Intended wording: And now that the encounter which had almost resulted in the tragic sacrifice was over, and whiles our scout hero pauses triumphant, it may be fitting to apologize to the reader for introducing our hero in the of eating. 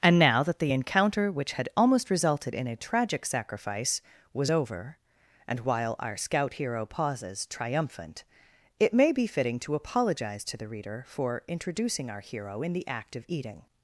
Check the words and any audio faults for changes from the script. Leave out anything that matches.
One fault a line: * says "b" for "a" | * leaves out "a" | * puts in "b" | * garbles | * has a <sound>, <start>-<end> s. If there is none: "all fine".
* says "a" for "the"
* says "while" for "whiles"
* puts in "act"